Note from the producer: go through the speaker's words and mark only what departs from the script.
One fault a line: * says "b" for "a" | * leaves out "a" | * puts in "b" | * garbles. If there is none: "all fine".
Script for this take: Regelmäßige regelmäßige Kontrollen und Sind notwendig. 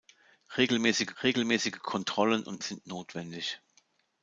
all fine